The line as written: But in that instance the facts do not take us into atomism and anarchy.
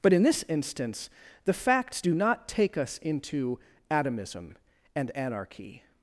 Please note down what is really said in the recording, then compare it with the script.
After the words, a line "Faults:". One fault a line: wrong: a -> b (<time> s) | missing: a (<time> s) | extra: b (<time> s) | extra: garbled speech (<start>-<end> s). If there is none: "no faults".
But in this instance the facts do not take us into atomism and anarchy.
Faults:
wrong: that -> this (0.2 s)